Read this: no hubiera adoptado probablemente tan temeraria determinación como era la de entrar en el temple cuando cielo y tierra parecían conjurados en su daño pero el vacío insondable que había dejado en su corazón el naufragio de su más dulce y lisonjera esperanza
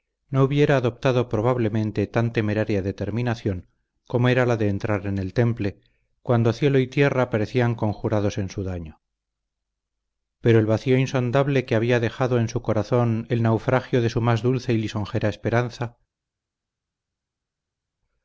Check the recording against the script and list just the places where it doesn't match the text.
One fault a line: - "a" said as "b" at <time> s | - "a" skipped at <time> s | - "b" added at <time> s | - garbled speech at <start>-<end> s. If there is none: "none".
none